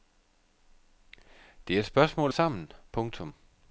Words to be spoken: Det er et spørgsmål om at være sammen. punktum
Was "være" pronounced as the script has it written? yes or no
no